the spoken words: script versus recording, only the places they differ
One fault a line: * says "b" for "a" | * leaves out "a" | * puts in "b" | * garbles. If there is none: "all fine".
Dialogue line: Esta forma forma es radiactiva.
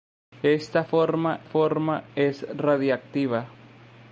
all fine